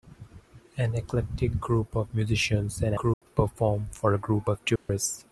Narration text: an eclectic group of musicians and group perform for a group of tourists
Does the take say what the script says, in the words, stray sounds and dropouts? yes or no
no